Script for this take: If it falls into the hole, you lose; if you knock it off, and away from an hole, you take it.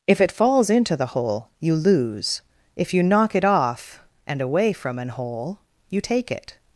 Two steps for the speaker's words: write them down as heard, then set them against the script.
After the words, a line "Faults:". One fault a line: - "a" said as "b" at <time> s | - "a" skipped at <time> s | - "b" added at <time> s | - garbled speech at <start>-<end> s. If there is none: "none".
If it falls into the hole, you lose; if you knock it off, and away from an hole, you take it.
Faults:
none